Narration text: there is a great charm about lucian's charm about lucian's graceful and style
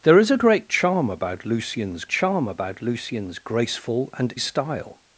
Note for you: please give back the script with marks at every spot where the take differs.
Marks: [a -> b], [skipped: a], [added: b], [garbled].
there is a great charm about lucian's charm about lucian's graceful and style